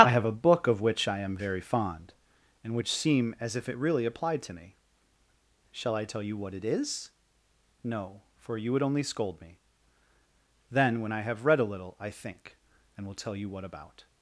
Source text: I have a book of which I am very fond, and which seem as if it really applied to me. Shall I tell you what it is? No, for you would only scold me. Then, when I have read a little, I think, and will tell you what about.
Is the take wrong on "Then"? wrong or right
right